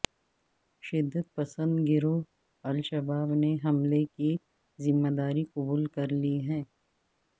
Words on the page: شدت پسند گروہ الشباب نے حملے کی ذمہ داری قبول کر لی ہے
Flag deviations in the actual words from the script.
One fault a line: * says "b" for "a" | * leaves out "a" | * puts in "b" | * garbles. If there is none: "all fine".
all fine